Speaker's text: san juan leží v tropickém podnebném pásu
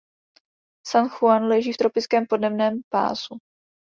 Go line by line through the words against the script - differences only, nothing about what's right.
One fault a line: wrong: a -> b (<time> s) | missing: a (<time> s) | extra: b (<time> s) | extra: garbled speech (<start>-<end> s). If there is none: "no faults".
no faults